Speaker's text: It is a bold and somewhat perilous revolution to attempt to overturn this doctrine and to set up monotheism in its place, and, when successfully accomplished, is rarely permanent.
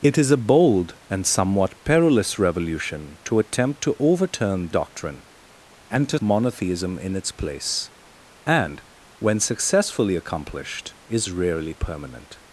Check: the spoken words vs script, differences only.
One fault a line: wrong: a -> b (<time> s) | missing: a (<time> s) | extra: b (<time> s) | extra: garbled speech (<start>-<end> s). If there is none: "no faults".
missing: this (4.7 s)
missing: set up (6.2 s)